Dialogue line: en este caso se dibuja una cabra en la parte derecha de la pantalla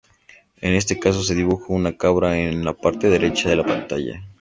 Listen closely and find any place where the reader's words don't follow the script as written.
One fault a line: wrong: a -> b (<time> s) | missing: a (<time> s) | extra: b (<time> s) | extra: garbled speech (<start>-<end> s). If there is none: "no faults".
no faults